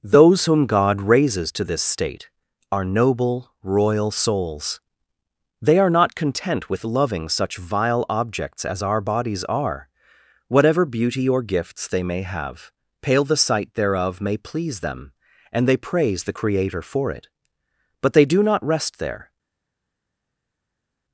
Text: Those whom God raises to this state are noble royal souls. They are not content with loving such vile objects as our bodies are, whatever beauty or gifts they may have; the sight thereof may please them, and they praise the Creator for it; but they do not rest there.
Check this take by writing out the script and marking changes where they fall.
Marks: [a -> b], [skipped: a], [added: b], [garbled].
Those whom God raises to this state are noble royal souls. They are not content with loving such vile objects as our bodies are, whatever beauty or gifts they may have; [added: pale] the sight thereof may please them, and they praise the Creator for it; but they do not rest there.